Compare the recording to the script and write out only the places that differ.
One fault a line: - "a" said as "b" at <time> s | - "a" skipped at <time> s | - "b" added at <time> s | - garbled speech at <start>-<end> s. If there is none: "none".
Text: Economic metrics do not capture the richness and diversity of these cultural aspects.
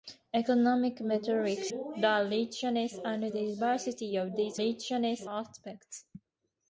- "do not capture" skipped at 1.7 s
- "cultural" said as "richness" at 4.6 s